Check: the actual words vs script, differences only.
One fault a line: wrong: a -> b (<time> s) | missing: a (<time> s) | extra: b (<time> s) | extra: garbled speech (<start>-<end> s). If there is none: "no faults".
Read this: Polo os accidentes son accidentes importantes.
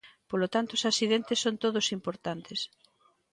extra: tanto (0.5 s)
wrong: accidentes -> todos (1.6 s)